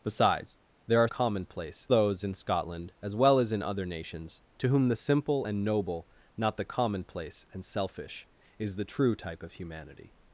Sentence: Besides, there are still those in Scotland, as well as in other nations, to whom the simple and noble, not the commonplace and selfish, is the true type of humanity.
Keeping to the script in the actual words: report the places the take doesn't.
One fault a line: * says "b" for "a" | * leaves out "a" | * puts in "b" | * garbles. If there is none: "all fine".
* says "commonplace" for "still"